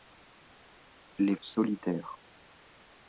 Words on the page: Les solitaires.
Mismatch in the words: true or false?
false